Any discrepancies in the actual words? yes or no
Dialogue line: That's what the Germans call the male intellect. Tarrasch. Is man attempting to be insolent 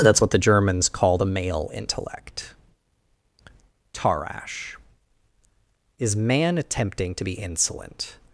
no